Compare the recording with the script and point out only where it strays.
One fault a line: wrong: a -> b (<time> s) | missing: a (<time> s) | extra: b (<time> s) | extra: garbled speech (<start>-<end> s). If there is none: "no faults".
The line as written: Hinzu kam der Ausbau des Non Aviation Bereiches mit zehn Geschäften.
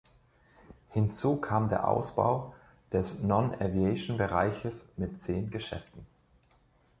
no faults